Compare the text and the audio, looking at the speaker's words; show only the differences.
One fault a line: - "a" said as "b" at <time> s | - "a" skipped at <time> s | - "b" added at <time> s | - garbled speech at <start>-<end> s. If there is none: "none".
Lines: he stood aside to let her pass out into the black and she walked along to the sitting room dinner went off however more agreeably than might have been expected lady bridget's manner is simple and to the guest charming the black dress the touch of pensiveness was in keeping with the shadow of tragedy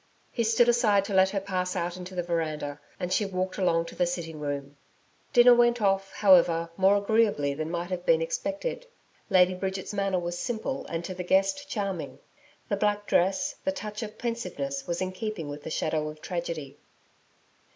- "black" said as "veranda" at 2.2 s
- "is" said as "was" at 10.2 s